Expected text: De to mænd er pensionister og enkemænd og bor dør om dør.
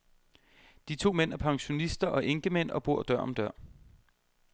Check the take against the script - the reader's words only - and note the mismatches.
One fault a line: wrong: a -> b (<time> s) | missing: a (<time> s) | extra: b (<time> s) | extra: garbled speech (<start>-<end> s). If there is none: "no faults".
no faults